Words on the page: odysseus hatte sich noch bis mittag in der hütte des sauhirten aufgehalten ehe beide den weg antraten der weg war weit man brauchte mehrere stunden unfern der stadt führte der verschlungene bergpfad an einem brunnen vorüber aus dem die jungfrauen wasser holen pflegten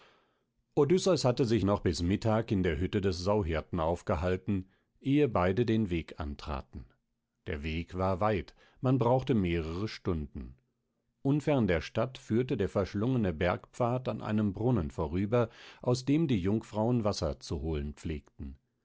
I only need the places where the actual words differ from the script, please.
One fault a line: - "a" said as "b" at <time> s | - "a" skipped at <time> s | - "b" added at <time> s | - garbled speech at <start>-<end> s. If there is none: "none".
- "zu" added at 17.4 s